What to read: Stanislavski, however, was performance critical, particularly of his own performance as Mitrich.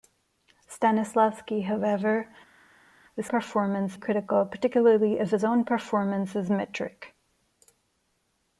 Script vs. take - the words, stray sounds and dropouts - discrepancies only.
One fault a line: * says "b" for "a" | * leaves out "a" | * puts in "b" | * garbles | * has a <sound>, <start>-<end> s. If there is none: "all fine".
all fine